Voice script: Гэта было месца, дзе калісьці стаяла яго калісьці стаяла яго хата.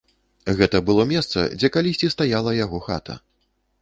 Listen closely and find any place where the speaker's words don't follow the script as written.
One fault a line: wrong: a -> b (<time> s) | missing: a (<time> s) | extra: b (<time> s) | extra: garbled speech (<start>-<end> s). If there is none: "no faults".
missing: калісьці стаяла яго (2.8 s)